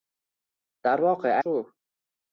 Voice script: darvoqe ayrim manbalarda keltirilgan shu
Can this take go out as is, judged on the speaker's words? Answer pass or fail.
fail